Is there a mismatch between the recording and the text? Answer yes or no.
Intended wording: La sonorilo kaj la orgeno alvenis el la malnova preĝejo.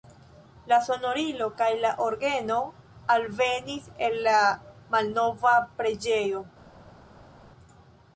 no